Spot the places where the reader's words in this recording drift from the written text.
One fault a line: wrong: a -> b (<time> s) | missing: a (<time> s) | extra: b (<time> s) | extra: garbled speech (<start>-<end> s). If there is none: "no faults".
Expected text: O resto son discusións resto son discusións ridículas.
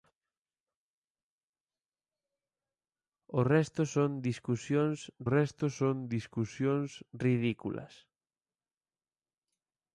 no faults